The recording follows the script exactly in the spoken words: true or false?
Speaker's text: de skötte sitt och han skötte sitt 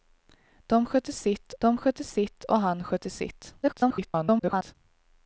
false